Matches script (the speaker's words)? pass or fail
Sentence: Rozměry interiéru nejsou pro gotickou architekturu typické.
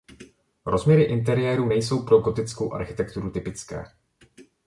pass